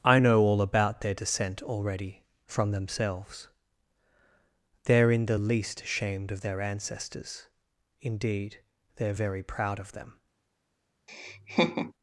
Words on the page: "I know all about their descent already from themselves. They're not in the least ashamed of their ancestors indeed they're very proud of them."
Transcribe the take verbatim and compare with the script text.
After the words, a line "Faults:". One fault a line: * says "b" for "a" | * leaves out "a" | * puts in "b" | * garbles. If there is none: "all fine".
"I know all about their descent already from themselves. They're in the least ashamed of their ancestors indeed they're very proud of them."
Faults:
* leaves out "not"